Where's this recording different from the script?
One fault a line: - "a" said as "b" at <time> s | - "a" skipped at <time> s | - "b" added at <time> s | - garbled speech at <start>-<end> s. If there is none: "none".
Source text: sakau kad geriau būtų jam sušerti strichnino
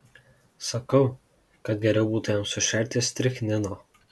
none